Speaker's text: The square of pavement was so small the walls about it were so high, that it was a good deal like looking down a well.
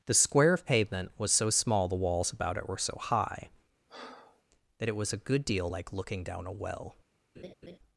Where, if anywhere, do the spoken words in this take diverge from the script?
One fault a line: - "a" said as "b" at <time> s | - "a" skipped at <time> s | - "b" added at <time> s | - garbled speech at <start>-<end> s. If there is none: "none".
none